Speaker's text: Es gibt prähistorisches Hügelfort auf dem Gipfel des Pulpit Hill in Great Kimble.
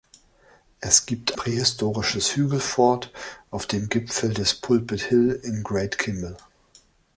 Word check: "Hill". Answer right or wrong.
right